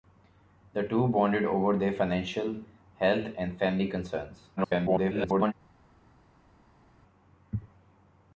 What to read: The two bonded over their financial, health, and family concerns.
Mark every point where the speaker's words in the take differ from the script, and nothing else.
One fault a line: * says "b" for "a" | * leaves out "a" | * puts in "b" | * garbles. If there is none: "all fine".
* garbles